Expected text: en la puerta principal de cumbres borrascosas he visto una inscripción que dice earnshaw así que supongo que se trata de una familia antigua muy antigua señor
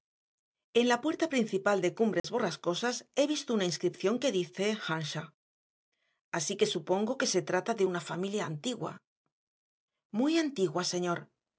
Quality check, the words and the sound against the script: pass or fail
fail